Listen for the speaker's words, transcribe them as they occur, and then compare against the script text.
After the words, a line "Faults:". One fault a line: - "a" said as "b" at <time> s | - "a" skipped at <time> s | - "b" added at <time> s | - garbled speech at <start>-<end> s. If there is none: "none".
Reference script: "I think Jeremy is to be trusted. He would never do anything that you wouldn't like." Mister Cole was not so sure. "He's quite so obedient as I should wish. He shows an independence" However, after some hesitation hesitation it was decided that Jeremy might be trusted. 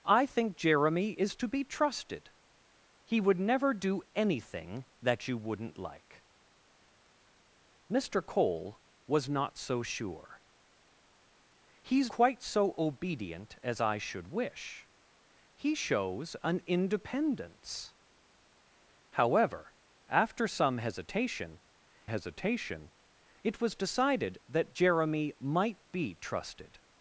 "I think Jeremy is to be trusted. He would never do anything that you wouldn't like." Mister Cole was not so sure. "He's quite so obedient as I should wish. He shows an independence" However, after some hesitation hesitation it was decided that Jeremy might be trusted.
Faults:
none